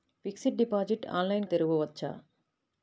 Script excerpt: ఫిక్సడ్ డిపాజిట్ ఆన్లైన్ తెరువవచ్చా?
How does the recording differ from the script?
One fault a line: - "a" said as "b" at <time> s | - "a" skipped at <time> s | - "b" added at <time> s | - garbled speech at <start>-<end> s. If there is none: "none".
none